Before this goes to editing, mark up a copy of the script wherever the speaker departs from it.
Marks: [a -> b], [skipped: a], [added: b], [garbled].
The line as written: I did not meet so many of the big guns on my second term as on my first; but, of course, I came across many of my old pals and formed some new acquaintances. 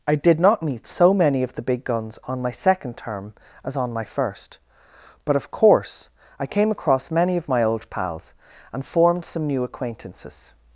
I did not meet so many of the big guns on my second term as on my first; but, of course, I came across many of my old pals and formed some new acquaintances.